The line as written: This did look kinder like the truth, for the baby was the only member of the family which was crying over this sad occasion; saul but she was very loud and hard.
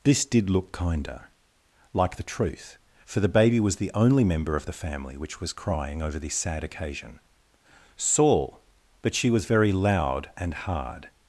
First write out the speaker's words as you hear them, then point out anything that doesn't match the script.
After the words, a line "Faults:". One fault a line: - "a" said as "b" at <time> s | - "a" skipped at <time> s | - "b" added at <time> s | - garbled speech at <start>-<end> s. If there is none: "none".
This did look kinder like the truth, for the baby was the only member of the family which was crying over this sad occasion; saul but she was very loud and hard.
Faults:
none